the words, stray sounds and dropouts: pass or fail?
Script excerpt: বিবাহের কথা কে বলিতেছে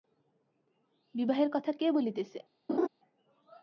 fail